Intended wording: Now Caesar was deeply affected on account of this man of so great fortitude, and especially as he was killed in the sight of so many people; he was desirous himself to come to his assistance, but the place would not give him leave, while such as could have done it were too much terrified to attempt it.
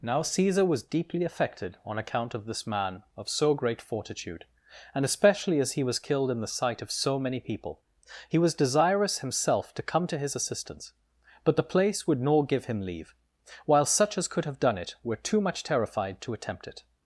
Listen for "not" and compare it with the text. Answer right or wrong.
wrong